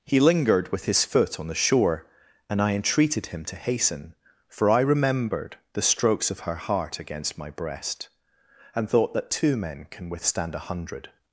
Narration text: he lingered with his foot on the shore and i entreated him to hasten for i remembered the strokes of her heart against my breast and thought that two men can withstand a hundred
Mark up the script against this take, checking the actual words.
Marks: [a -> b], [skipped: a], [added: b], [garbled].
he lingered with his foot on the shore and i entreated him to hasten for i remembered the strokes of her heart against my breast and thought that two men can withstand a hundred